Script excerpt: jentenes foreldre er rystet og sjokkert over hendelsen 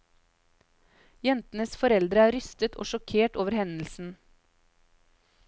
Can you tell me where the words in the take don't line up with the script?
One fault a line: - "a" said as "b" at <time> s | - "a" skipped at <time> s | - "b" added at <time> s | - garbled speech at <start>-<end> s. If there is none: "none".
none